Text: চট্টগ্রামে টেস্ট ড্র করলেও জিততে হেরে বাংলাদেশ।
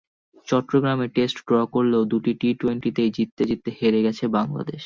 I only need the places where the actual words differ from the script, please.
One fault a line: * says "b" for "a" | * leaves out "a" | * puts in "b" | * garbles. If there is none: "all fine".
* puts in "দুটি টি-টোয়েন্টিতেই"
* puts in "জিততে"
* puts in "গেছে"